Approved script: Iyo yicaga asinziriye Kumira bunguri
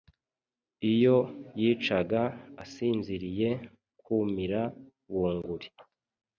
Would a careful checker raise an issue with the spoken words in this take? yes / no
no